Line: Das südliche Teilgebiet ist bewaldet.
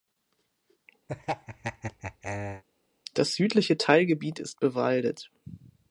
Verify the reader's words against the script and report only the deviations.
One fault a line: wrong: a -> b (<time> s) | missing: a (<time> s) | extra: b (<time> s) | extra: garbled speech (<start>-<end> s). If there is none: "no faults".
no faults